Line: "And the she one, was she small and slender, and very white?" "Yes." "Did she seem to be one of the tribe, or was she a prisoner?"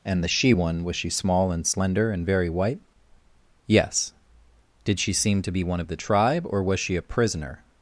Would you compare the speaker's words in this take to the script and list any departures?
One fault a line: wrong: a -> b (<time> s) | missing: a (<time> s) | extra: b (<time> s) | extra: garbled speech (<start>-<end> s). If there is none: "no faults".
no faults